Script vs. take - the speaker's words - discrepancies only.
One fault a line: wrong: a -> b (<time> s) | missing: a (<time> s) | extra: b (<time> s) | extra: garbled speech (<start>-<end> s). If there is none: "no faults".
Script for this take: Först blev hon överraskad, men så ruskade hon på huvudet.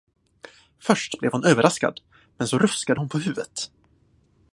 no faults